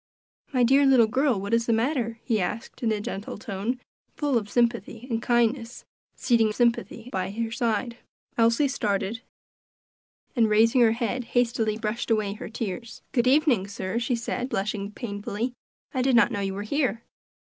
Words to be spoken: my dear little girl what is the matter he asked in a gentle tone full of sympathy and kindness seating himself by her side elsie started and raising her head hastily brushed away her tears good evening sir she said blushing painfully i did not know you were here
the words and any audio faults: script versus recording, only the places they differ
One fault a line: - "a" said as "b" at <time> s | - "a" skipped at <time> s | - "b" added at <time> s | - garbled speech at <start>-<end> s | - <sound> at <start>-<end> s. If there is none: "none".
- "himself" said as "sympathy" at 6.5 s